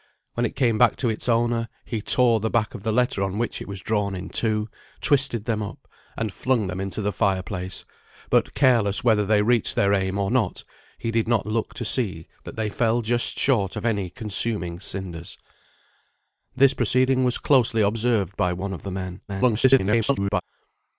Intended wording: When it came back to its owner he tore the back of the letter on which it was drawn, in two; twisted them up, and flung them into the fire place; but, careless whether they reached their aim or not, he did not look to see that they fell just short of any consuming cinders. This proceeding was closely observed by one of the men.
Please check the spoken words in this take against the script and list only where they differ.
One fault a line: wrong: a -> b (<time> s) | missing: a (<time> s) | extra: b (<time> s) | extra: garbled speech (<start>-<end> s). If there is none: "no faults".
extra: garbled speech (19.3-20.4 s)